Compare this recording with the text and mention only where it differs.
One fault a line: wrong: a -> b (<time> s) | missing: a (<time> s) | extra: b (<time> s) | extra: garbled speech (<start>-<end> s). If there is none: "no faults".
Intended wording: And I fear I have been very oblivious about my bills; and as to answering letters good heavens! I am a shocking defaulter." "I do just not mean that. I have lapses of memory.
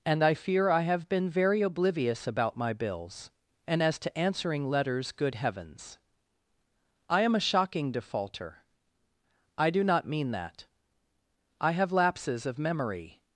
missing: just (9.8 s)